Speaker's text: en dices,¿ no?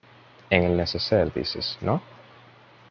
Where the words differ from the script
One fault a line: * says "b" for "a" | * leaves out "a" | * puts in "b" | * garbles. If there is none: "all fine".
* puts in "el neceser"